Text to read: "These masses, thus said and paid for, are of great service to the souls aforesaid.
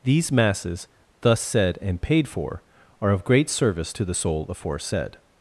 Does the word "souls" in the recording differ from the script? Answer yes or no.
yes